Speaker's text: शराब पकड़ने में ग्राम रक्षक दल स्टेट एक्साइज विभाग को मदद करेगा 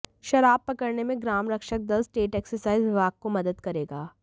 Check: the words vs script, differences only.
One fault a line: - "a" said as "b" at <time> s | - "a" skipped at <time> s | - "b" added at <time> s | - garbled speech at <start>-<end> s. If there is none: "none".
none